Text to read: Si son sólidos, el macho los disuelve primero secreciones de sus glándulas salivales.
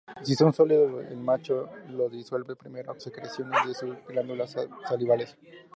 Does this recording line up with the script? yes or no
yes